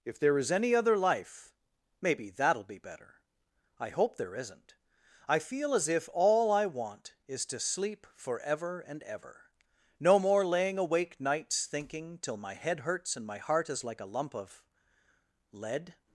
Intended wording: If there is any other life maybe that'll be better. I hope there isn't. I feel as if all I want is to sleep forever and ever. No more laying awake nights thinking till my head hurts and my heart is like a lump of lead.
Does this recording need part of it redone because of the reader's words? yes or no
no